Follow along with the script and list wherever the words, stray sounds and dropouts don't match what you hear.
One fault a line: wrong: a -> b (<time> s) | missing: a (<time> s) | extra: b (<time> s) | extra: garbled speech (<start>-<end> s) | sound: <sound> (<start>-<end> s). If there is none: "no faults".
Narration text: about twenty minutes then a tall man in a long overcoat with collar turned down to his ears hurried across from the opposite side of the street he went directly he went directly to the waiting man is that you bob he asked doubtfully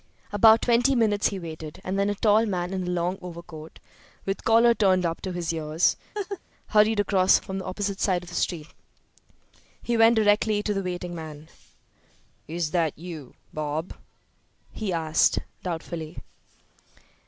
extra: he waited and (1.3 s)
wrong: down -> up (5.0 s)
sound: laugh (6.1-6.4 s)
missing: he went directly (10.6 s)